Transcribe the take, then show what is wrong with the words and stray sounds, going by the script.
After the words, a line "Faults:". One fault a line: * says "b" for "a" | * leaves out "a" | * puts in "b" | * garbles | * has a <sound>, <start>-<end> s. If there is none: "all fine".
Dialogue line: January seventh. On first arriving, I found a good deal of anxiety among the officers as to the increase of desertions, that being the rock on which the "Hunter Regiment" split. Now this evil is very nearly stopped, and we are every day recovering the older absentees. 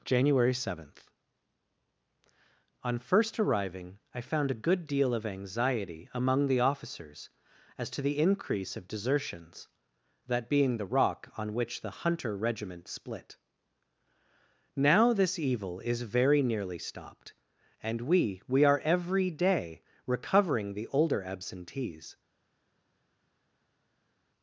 January seventh. On first arriving, I found a good deal of anxiety among the officers as to the increase of desertions, that being the rock on which the "Hunter Regiment" split. Now this evil is very nearly stopped, and we we are every day recovering the older absentees.
Faults:
* puts in "we"